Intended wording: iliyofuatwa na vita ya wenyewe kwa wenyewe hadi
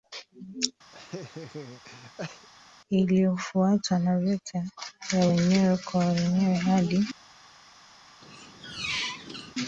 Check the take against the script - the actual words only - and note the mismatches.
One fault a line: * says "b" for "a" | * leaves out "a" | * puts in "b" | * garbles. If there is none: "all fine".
all fine